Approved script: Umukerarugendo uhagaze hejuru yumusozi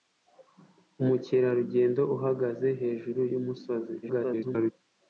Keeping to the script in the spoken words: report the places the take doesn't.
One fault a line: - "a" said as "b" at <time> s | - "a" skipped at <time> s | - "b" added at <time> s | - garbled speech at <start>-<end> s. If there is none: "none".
- garbled speech at 4.0-4.7 s